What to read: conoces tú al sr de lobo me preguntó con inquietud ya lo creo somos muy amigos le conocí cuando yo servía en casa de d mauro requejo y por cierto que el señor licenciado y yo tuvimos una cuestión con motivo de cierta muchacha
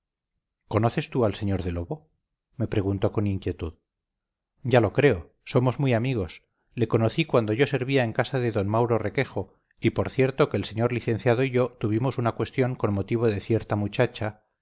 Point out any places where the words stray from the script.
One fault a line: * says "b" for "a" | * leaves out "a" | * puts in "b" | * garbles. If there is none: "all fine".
all fine